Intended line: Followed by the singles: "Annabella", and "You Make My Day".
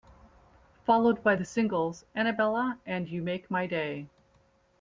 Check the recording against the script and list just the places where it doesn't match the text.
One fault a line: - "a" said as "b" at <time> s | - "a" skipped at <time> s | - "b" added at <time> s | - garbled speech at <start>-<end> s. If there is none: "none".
none